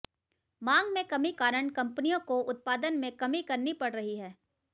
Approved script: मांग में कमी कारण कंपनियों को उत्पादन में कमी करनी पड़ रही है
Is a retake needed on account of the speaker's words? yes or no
no